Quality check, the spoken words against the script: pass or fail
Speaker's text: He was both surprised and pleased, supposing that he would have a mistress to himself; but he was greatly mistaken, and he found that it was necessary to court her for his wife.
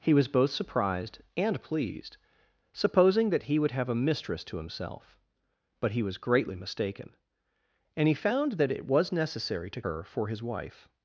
fail